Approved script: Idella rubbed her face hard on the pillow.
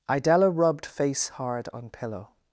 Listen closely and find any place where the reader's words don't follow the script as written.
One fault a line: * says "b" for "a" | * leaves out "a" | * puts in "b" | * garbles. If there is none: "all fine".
* leaves out "her"
* leaves out "the"